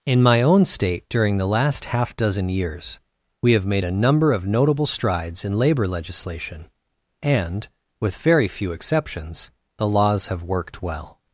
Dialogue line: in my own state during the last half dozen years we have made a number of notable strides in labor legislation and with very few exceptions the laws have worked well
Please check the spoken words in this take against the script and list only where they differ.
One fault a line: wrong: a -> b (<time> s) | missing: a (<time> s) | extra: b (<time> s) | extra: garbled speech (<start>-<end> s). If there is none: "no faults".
no faults